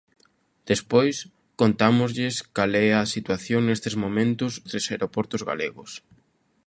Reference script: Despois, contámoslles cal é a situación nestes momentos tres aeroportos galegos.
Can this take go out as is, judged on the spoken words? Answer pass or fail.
pass